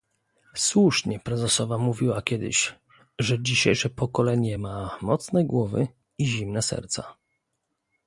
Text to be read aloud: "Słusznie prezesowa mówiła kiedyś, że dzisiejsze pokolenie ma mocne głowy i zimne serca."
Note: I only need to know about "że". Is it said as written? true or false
true